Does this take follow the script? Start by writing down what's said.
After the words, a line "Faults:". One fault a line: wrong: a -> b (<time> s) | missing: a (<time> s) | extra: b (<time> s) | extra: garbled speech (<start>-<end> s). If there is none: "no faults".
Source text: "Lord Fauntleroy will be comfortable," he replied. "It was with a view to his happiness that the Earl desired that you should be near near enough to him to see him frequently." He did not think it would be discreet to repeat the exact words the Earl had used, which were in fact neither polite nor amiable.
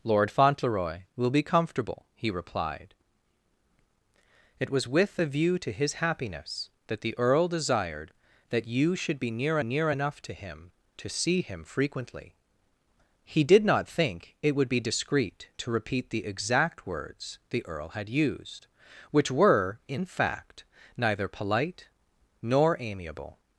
"Lord Fauntleroy will be comfortable," he replied. "It was with a view to his happiness that the Earl desired that you should be near near enough to him to see him frequently." He did not think it would be discreet to repeat the exact words the Earl had used, which were in fact neither polite nor amiable.
Faults:
no faults